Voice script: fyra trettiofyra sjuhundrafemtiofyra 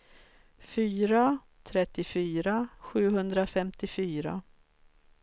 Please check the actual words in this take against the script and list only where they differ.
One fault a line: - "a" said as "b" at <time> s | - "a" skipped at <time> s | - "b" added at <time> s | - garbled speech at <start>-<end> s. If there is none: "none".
none